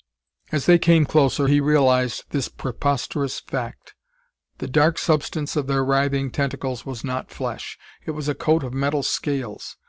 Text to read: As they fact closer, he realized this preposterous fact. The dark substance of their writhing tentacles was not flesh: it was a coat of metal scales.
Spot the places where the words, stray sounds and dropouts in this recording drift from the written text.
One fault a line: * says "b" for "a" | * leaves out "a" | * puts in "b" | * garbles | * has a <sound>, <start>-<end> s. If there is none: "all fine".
* says "came" for "fact"